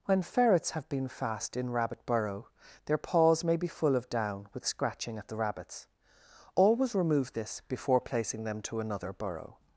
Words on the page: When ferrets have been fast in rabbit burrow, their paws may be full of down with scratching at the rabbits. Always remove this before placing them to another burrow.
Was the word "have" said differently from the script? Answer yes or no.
no